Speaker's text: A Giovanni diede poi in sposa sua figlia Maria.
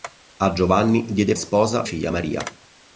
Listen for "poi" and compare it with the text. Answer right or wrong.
wrong